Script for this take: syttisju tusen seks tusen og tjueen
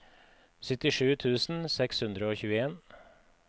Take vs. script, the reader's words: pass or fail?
fail